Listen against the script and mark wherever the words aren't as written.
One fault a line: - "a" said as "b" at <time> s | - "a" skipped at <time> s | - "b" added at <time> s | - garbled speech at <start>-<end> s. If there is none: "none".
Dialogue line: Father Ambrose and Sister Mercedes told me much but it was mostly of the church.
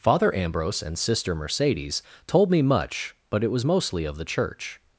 none